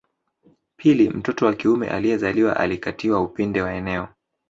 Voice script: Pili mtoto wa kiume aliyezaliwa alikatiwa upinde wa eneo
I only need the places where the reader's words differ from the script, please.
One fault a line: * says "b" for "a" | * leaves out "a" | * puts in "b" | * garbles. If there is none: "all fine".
all fine